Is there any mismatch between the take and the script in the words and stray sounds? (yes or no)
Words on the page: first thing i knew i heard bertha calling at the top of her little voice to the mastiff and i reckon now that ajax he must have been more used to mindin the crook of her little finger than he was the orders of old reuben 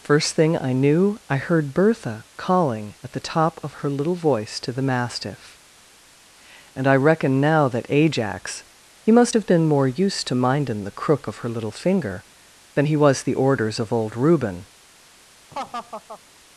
yes